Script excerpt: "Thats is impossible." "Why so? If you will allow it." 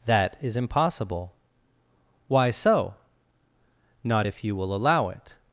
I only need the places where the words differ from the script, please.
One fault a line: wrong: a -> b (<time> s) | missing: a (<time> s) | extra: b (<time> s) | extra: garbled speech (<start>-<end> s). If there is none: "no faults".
wrong: Thats -> That (0.1 s)
extra: Not (4.0 s)